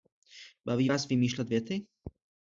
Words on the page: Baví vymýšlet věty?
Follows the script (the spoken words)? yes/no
no